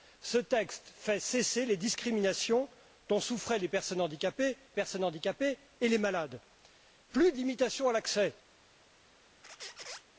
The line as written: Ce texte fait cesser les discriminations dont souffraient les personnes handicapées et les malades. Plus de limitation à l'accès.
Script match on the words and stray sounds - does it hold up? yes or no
no